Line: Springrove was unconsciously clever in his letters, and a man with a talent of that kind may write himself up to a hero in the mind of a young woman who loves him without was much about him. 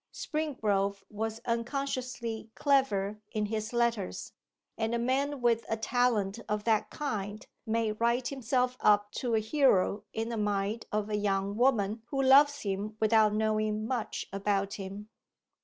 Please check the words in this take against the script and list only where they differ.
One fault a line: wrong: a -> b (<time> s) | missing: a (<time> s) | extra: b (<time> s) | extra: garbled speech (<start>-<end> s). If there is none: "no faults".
wrong: was -> knowing (13.3 s)